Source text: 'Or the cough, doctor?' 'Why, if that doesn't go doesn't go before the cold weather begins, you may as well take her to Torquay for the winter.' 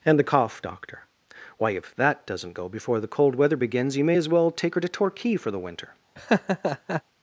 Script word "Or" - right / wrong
wrong